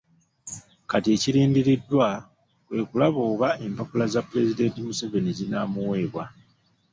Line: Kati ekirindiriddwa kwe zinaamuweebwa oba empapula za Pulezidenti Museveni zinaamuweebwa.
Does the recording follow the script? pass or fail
fail